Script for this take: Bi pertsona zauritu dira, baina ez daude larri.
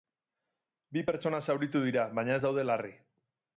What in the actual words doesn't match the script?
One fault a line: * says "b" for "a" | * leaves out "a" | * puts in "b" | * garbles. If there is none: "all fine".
all fine